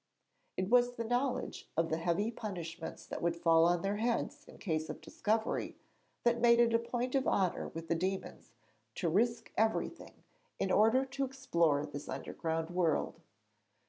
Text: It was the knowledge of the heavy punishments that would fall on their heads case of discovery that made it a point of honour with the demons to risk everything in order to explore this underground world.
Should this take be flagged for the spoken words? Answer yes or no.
yes